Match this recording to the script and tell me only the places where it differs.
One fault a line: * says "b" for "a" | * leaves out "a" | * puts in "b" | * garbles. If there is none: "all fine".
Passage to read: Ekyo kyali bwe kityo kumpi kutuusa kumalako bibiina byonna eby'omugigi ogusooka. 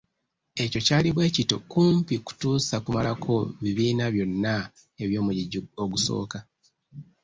all fine